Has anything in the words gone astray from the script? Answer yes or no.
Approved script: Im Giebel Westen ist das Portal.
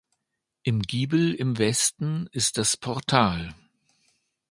yes